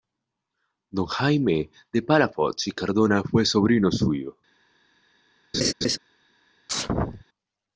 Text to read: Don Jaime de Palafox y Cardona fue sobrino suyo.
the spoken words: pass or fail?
pass